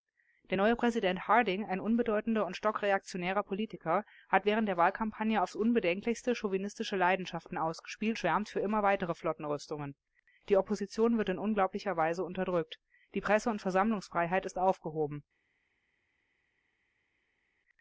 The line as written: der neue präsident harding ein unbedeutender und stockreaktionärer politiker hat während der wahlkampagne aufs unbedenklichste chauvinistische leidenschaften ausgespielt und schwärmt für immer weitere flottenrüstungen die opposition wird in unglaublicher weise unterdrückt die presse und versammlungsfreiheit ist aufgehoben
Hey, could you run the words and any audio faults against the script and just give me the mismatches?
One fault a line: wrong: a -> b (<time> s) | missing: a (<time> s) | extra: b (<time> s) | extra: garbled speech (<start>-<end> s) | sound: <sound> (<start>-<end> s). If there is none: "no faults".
missing: und (8.2 s)